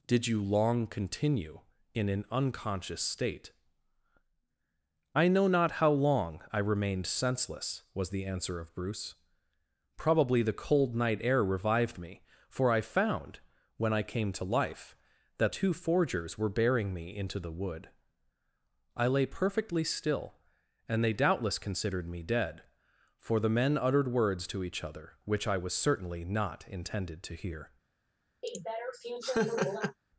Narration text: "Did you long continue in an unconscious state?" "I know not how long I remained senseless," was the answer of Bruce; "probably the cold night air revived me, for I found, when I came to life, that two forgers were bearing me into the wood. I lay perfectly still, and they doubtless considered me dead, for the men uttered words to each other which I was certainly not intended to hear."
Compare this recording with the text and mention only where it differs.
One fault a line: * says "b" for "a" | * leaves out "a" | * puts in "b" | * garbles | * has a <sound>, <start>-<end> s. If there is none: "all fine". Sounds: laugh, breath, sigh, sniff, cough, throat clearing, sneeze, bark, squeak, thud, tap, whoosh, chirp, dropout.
* has a laugh, 28.4-30.0 s